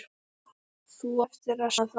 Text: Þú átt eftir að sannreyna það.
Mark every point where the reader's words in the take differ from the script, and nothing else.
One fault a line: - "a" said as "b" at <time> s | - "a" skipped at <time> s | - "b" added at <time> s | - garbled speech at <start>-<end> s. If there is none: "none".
- "átt" skipped at 1.1 s
- "sannreyna" skipped at 1.7 s